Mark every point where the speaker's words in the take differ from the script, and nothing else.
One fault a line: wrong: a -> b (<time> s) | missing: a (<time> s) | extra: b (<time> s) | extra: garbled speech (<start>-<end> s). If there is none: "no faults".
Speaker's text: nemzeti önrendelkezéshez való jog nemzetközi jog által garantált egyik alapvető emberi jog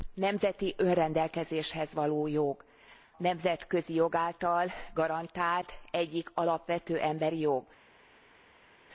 no faults